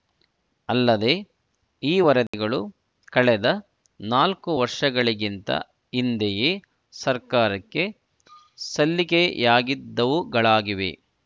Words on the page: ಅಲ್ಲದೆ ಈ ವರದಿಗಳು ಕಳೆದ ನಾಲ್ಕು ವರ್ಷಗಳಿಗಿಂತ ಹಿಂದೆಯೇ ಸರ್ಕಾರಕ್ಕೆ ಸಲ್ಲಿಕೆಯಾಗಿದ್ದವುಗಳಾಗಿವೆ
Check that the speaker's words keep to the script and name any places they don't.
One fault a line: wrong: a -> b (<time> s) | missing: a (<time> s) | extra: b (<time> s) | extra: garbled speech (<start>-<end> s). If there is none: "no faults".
no faults